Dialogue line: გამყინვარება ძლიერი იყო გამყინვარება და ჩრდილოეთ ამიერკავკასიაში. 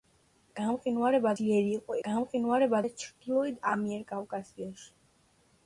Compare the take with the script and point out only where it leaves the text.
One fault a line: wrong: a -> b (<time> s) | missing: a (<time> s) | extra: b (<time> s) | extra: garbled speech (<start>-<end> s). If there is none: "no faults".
no faults